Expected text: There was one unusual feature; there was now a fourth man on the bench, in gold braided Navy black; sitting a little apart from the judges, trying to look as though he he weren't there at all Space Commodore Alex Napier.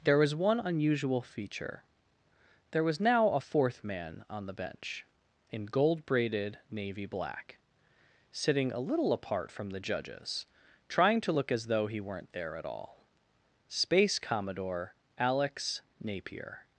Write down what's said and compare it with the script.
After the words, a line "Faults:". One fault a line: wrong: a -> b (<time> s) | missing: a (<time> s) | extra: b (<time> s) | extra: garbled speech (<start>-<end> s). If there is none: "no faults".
There was one unusual feature; there was now a fourth man on the bench, in gold braided Navy black; sitting a little apart from the judges, trying to look as though he weren't there at all Space Commodore Alex Napier.
Faults:
missing: he (12.0 s)